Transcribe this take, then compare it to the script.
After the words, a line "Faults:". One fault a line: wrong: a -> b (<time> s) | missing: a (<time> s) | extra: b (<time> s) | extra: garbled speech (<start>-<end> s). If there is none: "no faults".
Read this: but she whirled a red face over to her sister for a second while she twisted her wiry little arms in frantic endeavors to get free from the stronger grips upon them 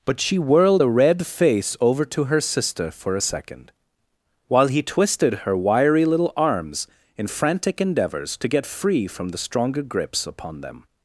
but she whirled a red face over to her sister for a second while he twisted her wiry little arms in frantic endeavors to get free from the stronger grips upon them
Faults:
wrong: she -> he (4.7 s)